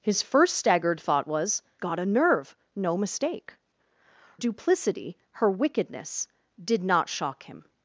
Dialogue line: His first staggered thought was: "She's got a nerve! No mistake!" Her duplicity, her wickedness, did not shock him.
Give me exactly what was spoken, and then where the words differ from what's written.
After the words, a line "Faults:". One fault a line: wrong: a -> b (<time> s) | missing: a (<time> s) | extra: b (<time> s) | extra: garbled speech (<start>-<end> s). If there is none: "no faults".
His first staggered thought was: "Got a nerve! No mistake!" Duplicity, her wickedness, did not shock him.
Faults:
missing: She's (1.6 s)
missing: Her (3.5 s)